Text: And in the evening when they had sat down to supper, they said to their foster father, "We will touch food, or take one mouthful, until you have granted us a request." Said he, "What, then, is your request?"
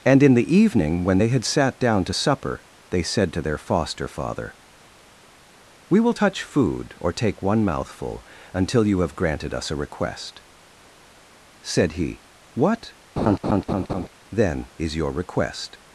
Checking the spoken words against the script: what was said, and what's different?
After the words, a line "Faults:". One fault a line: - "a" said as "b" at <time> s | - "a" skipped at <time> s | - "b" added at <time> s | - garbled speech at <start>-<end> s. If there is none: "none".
And in the evening when they had sat down to supper, they said to their foster father, "We will touch food, or take one mouthful, until you have granted us a request." Said he, "What, then, is your request?"
Faults:
none